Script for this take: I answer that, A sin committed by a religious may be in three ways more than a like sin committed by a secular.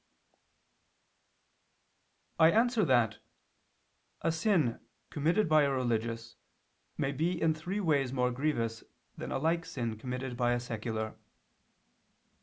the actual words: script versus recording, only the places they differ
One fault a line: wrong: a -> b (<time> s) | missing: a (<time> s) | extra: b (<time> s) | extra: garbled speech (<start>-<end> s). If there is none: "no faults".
extra: grievous (8.3 s)